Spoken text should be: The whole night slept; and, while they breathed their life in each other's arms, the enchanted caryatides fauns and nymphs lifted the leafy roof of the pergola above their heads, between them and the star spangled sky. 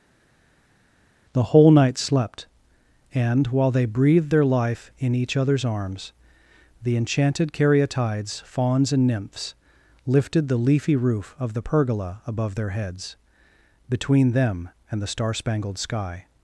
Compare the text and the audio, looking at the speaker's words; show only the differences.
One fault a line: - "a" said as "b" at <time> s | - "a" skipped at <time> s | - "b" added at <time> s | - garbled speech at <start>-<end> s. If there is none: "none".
none